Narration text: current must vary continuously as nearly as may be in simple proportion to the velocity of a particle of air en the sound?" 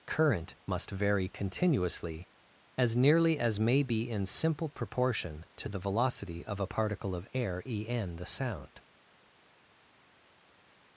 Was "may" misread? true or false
false